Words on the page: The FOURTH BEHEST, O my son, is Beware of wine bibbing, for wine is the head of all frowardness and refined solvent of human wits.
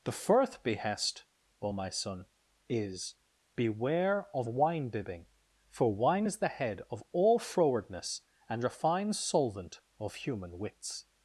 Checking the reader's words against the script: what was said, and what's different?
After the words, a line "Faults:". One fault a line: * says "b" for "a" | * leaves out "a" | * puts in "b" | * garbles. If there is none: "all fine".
The FOURTH BEHEST, O my son, is Beware of wine bibbing, for wine is the head of all frowardness and refined solvent of human wits.
Faults:
all fine